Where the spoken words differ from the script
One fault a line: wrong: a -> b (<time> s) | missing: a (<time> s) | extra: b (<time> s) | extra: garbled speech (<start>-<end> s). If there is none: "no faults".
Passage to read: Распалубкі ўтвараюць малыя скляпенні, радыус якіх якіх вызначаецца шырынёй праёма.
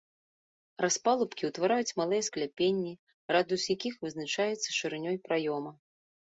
missing: якіх (3.9 s)